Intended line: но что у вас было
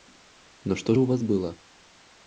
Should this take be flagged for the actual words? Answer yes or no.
no